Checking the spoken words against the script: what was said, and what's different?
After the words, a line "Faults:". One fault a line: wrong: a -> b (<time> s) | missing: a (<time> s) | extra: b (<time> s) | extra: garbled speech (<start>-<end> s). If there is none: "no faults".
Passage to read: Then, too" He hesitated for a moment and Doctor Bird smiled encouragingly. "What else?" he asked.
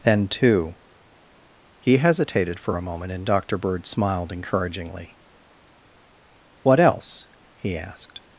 Then, too" He hesitated for a moment and Doctor Bird smiled encouragingly. "What else?" he asked.
Faults:
no faults